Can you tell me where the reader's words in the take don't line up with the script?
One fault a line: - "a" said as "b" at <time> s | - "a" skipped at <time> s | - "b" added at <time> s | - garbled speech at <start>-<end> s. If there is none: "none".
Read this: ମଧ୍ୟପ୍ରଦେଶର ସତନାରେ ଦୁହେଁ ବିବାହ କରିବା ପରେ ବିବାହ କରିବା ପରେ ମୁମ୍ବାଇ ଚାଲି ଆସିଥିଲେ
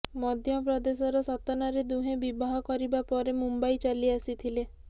- "ବିବାହ କରିବା ପରେ" skipped at 3.4 s